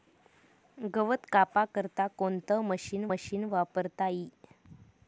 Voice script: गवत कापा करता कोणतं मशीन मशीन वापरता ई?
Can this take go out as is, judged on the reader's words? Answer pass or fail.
pass